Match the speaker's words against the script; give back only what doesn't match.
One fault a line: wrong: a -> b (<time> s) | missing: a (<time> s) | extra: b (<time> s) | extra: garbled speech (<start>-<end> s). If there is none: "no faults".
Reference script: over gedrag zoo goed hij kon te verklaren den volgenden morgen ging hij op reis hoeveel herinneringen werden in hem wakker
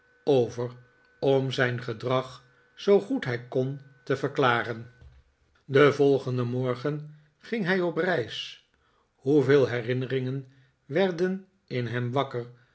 extra: om zijn (1.2 s)